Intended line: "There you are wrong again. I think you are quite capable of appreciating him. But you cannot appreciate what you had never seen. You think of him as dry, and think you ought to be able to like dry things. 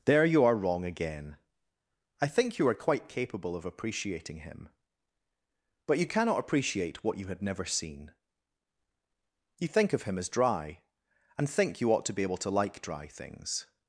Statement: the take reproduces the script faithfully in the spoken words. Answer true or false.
true